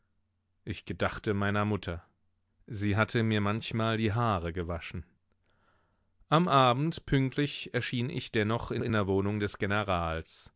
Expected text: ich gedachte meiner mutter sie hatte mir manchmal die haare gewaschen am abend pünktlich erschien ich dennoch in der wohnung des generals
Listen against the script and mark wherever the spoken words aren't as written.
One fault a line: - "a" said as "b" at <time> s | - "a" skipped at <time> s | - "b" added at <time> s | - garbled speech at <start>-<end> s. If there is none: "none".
- "in" added at 8.8 s